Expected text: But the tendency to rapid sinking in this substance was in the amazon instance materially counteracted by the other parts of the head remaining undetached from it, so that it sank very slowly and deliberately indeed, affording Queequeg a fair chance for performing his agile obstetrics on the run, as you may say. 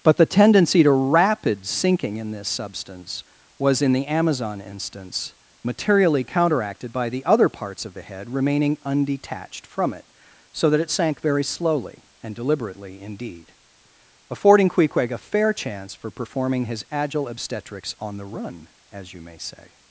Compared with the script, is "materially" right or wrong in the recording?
right